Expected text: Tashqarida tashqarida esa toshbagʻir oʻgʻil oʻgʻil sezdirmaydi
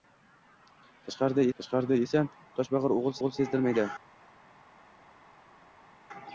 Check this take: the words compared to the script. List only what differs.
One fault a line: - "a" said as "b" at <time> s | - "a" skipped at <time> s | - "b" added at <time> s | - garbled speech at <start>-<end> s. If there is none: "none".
none